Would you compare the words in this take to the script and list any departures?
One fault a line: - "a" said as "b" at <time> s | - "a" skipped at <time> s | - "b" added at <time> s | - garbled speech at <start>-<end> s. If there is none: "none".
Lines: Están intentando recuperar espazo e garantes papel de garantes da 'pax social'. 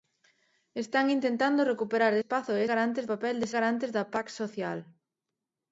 none